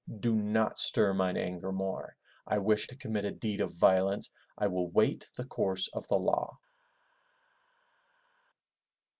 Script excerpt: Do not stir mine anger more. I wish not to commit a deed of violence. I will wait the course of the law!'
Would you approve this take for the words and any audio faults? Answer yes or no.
no